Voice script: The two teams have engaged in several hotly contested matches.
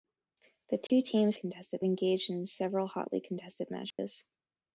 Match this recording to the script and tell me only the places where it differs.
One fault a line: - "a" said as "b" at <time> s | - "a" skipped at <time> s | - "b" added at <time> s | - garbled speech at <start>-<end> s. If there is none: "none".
- "have" said as "contested" at 1.3 s